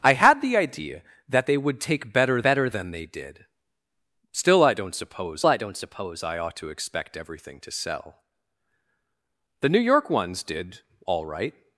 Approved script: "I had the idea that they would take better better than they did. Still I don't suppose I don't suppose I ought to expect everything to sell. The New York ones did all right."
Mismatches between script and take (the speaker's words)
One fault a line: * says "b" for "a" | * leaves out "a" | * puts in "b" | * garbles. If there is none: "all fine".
all fine